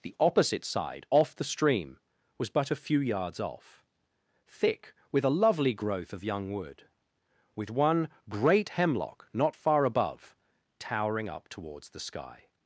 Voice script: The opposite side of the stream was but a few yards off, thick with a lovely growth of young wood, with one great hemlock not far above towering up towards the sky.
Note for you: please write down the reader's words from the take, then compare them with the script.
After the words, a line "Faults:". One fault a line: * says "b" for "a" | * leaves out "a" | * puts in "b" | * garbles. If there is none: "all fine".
The opposite side off the stream was but a few yards off, thick with a lovely growth of young wood, with one great hemlock not far above towering up towards the sky.
Faults:
* says "off" for "of"